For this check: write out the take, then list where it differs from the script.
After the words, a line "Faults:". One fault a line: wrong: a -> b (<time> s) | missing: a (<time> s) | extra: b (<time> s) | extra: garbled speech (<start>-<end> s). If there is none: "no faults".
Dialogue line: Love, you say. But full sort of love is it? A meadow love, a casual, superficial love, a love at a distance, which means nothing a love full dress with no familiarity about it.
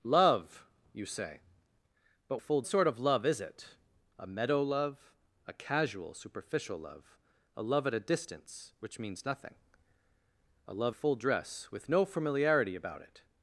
Love, you say. But full sort of love is it? A meadow love, a casual, superficial love, a love at a distance, which means nothing a love full dress with no familiarity about it.
Faults:
no faults